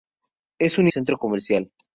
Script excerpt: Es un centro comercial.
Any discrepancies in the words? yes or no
no